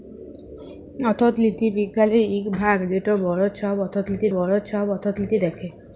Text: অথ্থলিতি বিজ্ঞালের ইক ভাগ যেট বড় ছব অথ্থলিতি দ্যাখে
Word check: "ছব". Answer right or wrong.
right